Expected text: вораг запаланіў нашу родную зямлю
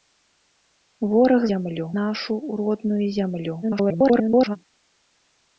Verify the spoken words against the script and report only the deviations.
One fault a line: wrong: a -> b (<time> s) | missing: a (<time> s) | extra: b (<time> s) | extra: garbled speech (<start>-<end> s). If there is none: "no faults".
wrong: запаланіў -> зямлю (1.5 s)
extra: garbled speech (3.6-4.6 s)